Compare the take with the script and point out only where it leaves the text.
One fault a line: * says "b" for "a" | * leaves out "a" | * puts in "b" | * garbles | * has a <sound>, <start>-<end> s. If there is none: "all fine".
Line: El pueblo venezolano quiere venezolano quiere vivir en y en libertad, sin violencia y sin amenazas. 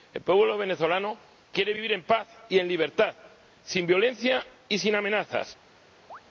* leaves out "venezolano quiere"
* puts in "paz"
* has a chirp, 6.1-6.2 s